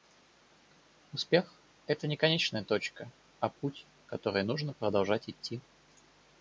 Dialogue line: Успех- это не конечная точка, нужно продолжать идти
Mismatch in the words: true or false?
true